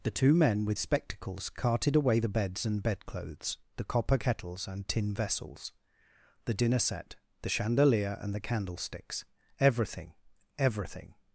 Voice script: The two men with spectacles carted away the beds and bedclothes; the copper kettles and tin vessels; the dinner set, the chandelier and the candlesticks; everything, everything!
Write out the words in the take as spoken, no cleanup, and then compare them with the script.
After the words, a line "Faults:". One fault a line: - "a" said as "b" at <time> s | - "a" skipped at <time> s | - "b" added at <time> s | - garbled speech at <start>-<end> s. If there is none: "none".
The two men with spectacles carted away the beds and bedclothes; the copper kettles and tin vessels; the dinner set, the chandelier and the candlesticks; everything, everything!
Faults:
none